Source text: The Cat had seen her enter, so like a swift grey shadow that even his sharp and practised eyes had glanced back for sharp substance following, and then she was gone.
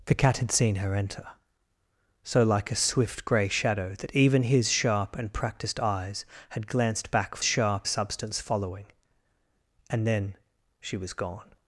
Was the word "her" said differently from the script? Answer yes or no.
no